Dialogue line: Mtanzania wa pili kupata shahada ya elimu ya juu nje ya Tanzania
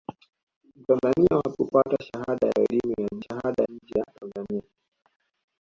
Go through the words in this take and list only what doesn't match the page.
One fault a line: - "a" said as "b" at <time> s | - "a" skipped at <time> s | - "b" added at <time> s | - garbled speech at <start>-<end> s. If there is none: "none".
- "pili" skipped at 1.6 s
- "juu" said as "shahada" at 3.2 s